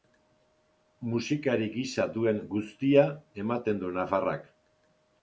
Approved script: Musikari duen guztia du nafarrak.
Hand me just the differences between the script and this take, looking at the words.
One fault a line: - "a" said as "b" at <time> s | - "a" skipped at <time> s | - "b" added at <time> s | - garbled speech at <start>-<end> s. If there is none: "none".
- "gisa" added at 1.8 s
- "ematen" added at 3.5 s